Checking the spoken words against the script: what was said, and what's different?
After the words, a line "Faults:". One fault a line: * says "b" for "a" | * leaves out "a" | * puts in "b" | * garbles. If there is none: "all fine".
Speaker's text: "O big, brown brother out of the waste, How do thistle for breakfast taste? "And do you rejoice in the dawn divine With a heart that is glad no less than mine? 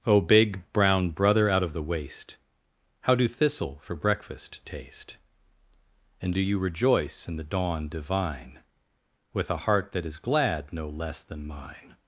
"O big, brown brother out of the waste, How do thistle for breakfast taste? "And do you rejoice in the dawn divine With a heart that is glad no less than mine?
Faults:
all fine